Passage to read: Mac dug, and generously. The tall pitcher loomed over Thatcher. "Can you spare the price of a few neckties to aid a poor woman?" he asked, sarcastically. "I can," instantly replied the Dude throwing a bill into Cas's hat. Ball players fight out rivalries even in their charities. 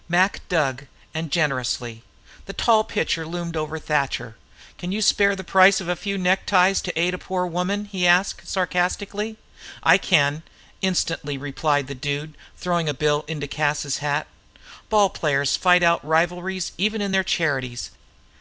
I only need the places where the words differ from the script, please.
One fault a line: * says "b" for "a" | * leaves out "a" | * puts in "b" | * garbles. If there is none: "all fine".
all fine